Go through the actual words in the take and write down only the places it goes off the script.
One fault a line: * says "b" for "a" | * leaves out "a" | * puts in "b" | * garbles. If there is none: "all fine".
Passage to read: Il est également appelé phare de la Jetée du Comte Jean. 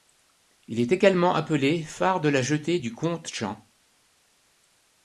all fine